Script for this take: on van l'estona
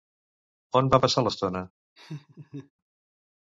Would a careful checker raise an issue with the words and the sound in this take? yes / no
yes